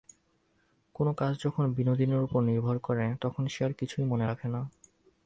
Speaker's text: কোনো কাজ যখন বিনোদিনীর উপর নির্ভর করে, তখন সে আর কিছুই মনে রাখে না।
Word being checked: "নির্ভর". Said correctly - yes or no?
yes